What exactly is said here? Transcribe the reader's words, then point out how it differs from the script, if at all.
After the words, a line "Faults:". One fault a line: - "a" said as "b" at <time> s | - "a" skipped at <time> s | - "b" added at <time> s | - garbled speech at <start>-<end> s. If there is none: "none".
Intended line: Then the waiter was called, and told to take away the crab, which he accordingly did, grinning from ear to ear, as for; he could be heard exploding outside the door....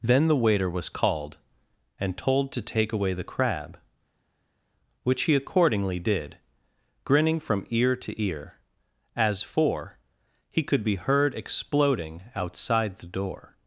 Then the waiter was called, and told to take away the crab, which he accordingly did, grinning from ear to ear, as for; he could be heard exploding outside the door....
Faults:
none